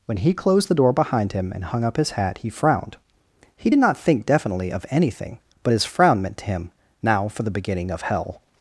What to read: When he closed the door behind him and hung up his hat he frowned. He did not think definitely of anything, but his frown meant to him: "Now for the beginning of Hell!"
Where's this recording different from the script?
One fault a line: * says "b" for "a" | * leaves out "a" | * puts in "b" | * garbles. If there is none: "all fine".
all fine